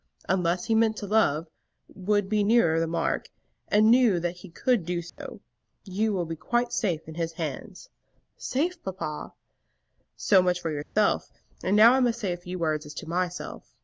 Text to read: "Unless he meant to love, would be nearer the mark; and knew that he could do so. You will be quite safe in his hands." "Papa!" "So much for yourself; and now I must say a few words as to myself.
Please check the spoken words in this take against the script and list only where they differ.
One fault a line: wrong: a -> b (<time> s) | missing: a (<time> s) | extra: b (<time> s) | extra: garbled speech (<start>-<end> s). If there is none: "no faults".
extra: Safe (8.4 s)